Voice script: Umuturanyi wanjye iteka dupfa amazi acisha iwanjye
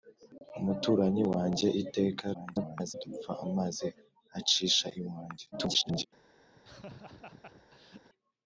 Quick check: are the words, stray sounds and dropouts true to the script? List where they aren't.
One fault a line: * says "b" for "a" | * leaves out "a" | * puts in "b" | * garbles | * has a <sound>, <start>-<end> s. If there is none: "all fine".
* garbles
* garbles
* has a laugh, 6.5-8.1 s